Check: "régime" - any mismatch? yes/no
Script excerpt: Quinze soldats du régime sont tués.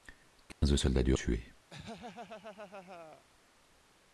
yes